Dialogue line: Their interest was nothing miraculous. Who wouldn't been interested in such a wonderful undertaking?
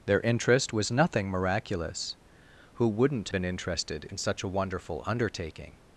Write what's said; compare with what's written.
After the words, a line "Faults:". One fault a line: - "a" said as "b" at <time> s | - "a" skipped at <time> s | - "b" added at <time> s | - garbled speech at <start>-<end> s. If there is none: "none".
Their interest was nothing miraculous. Who wouldn't been interested in such a wonderful undertaking?
Faults:
none